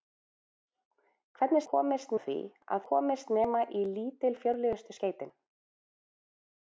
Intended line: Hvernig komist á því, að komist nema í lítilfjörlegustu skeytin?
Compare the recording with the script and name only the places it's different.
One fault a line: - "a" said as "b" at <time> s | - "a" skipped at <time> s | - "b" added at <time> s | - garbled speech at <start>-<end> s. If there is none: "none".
none